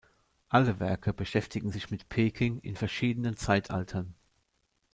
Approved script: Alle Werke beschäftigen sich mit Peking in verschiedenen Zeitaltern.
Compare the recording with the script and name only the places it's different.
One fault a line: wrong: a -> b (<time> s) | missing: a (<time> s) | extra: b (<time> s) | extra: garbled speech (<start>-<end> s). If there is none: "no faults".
no faults